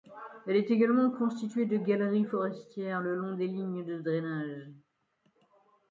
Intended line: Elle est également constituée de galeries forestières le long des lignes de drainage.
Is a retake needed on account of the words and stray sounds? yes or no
no